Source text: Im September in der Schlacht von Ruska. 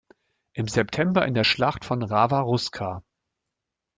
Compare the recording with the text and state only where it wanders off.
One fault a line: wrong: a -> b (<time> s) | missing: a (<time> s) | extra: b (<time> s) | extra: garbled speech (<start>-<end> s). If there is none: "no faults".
extra: Rawa (2.0 s)